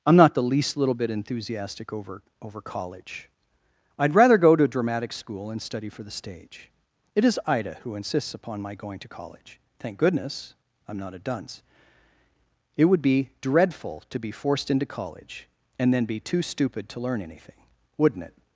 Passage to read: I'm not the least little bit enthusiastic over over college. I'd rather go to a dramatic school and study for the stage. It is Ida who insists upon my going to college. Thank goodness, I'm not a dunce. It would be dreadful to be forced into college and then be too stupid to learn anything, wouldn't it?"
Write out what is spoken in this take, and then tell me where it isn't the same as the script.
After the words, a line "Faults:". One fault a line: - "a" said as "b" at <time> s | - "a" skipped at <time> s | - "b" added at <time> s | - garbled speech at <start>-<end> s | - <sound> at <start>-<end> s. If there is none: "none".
I'm not the least little bit enthusiastic over over college. I'd rather go to a dramatic school and study for the stage. It is Ida who insists upon my going to college. Thank goodness, I'm not a dunce. It would be dreadful to be forced into college and then be too stupid to learn anything, wouldn't it?"
Faults:
none